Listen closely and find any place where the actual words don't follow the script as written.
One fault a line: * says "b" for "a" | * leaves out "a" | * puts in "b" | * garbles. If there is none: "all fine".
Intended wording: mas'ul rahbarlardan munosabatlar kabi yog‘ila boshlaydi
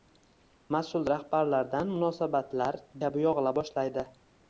all fine